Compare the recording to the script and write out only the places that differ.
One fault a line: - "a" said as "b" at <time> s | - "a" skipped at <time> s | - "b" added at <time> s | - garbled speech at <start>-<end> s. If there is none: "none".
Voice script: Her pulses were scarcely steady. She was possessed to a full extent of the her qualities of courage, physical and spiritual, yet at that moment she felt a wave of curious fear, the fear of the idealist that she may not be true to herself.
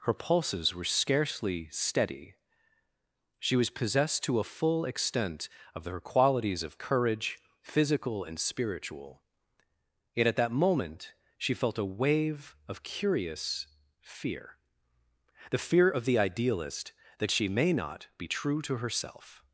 - "the" skipped at 5.8 s